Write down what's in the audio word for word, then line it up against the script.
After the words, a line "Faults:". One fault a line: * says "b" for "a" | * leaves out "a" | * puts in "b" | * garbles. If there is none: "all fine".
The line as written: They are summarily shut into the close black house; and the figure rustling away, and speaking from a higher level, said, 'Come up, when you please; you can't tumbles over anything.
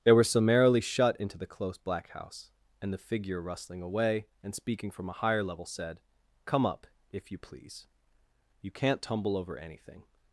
They were summarily shut into the close black house; and the figure rustling away, and speaking from a higher level, said, 'Come up, if you please; you can't tumble over anything.
Faults:
* says "were" for "are"
* says "if" for "when"
* says "tumble" for "tumbles"